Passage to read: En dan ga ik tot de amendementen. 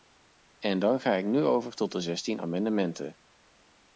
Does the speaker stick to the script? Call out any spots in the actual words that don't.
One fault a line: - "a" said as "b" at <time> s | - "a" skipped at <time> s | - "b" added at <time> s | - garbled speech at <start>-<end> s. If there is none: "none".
- "nu over" added at 1.3 s
- "zestien" added at 2.0 s